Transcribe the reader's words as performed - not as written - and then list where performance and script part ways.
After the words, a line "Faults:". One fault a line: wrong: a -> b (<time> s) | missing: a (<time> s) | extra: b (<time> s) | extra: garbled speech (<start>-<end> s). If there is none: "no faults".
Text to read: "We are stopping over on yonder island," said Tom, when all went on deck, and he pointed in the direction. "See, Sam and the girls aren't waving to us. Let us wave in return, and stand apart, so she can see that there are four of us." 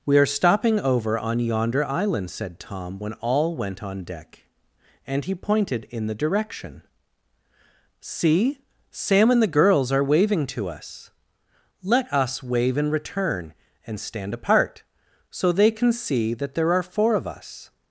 "We are stopping over on yonder island," said Tom, when all went on deck, and he pointed in the direction. "See, Sam and the girls are waving to us. Let us wave in return, and stand apart, so they can see that there are four of us."
Faults:
wrong: aren't -> are (9.9 s)
wrong: she -> they (15.5 s)